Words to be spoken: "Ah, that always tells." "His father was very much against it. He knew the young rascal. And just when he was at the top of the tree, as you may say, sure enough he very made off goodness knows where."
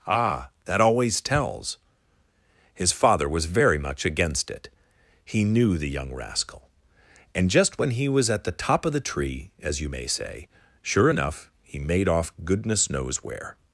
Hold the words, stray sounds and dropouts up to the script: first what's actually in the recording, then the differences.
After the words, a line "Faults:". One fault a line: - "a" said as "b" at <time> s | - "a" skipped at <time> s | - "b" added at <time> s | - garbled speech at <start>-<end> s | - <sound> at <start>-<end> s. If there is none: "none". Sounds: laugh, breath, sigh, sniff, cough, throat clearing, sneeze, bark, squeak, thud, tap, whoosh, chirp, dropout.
"Ah, that always tells." "His father was very much against it. He knew the young rascal. And just when he was at the top of the tree, as you may say, sure enough he made off goodness knows where."
Faults:
- "very" skipped at 11.8 s